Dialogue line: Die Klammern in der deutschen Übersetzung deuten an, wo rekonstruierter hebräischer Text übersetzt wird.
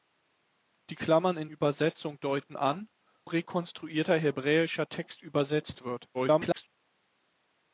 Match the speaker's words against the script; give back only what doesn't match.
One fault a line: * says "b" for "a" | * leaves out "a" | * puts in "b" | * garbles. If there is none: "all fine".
* leaves out "der deutschen"
* leaves out "wo"
* garbles